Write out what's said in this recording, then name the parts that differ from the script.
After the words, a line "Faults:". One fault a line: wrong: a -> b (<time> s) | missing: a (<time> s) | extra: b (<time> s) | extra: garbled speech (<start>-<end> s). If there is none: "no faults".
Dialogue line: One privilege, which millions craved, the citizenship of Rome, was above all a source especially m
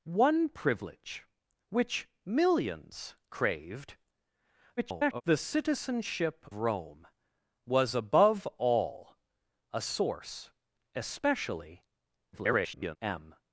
One privilege, which millions craved, [garbled] the citizenship Rome, was above all a source especially [garbled] m
Faults:
extra: garbled speech (4.8-5.2 s)
missing: of (6.5 s)
extra: garbled speech (12.3-13.0 s)